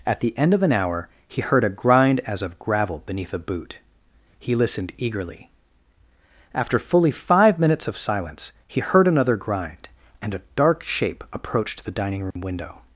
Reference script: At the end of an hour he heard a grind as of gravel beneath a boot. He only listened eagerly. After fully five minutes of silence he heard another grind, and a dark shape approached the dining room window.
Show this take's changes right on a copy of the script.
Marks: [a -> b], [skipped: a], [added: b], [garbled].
At the end of an hour he heard a grind as of gravel beneath a boot. He [skipped: only] listened eagerly. After fully five minutes of silence he heard another grind, and a dark shape approached the dining room window.